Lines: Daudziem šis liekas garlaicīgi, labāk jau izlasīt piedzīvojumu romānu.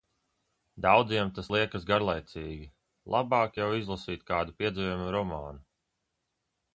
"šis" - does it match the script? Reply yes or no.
no